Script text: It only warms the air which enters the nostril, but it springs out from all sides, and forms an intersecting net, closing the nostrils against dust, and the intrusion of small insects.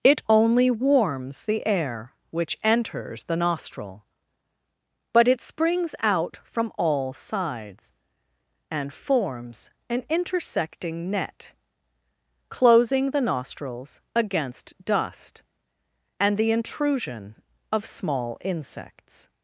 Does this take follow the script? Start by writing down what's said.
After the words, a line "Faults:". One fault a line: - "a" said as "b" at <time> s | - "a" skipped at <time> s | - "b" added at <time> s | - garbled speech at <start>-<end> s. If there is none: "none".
It only warms the air which enters the nostril, but it springs out from all sides, and forms an intersecting net, closing the nostrils against dust, and the intrusion of small insects.
Faults:
none